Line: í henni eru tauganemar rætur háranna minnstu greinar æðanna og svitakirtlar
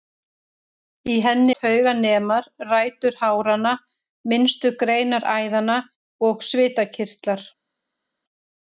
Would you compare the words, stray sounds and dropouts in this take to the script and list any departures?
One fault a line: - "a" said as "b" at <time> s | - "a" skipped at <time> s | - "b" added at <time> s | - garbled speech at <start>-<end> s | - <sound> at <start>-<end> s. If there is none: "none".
- "eru" skipped at 1.5 s